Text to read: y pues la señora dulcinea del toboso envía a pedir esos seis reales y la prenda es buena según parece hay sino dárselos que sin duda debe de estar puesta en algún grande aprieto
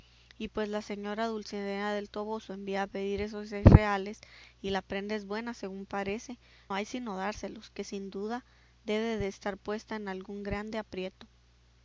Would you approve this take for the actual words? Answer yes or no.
yes